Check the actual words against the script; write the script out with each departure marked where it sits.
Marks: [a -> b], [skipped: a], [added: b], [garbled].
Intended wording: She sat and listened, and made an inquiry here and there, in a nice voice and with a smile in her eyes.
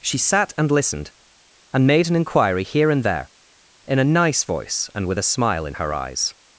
She sat and listened, and made an inquiry here and there, in a nice voice and with a smile in her eyes.